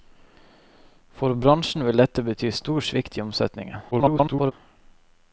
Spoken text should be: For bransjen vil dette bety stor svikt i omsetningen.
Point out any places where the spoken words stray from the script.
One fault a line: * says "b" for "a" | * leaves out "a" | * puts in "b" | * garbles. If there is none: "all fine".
* garbles